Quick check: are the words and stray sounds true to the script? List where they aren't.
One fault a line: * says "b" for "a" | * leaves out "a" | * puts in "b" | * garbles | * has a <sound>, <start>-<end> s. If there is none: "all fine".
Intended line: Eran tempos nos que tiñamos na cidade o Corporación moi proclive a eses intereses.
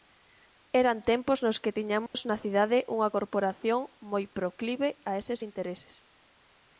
* has a dropout, 2.1-2.1 s
* says "unha" for "o"